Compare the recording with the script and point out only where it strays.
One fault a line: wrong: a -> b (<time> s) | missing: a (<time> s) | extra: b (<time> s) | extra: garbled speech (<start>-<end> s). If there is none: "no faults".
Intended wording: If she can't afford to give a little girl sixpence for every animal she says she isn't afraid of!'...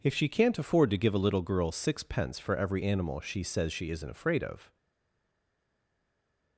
no faults